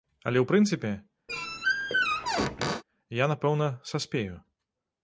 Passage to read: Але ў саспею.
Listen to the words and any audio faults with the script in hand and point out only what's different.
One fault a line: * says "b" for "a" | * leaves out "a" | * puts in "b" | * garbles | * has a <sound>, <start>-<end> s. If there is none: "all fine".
* puts in "прынцыпе я напэўна"
* has a squeak, 1.3-2.8 s